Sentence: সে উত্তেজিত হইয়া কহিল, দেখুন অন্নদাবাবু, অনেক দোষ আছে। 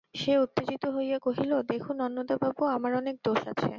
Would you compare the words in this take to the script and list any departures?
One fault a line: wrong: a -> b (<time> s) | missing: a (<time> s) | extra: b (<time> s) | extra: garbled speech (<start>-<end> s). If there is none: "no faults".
extra: আমার (2.8 s)